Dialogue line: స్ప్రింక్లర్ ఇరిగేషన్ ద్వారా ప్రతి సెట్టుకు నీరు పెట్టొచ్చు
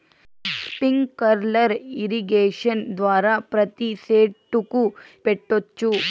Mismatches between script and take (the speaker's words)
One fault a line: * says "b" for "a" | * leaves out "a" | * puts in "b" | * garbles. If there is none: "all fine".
* leaves out "నీరు"